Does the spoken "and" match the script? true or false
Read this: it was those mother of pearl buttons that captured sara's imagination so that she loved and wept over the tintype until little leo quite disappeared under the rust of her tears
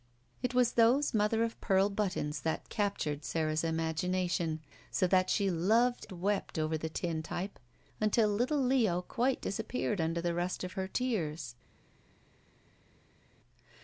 false